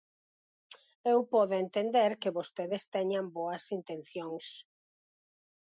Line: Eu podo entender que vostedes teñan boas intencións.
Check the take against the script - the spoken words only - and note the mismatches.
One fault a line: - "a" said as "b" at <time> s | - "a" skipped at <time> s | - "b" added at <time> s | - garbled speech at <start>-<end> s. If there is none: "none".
none